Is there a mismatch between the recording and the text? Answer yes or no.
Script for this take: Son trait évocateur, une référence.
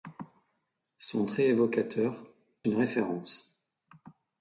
no